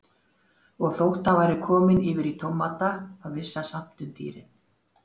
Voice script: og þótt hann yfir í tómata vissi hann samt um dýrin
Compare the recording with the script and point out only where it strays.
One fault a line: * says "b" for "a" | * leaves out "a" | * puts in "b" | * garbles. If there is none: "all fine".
* puts in "væri kominn"
* puts in "þá"